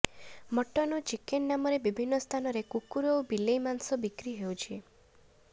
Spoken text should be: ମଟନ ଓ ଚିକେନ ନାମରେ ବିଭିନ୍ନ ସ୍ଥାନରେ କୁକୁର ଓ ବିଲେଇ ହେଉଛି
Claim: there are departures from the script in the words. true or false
true